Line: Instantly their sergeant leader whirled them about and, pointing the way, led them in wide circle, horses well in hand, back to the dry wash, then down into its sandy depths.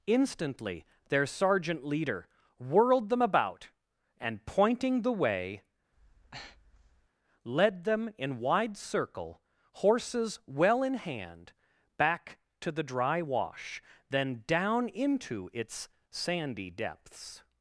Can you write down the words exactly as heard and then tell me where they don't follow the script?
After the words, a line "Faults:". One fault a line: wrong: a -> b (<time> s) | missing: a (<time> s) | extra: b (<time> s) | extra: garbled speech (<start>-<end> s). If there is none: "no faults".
Instantly their sergeant leader whirled them about and, pointing the way, led them in wide circle, horses well in hand, back to the dry wash, then down into its sandy depths.
Faults:
no faults